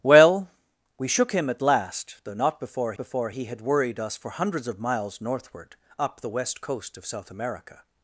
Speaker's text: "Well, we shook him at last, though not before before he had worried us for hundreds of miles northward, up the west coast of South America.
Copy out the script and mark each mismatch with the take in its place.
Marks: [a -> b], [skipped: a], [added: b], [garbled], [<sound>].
"Well, we shook him at last, though not before before he had worried us for hundreds of miles northward, up the west coast of South America.